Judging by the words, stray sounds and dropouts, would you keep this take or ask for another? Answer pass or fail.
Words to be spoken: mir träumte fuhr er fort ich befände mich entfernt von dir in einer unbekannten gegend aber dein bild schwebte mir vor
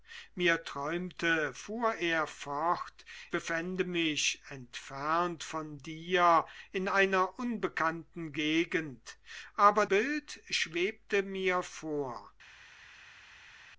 fail